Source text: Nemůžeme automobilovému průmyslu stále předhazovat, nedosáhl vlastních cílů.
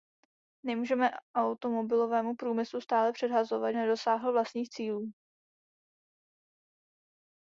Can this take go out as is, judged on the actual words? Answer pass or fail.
pass